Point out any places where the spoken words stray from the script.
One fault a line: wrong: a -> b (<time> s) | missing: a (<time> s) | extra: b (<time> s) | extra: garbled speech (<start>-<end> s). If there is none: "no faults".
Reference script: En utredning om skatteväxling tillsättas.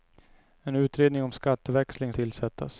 no faults